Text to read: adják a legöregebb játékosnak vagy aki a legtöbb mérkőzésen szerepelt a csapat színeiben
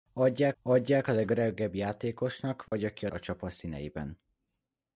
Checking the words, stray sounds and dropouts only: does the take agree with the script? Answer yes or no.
no